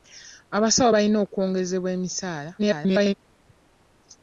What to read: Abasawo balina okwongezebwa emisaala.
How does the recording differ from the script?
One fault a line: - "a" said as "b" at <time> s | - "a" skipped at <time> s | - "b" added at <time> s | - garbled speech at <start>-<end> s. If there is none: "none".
- garbled speech at 2.6-3.1 s